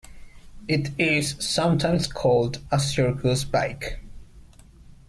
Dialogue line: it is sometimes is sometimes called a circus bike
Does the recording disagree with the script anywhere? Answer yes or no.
yes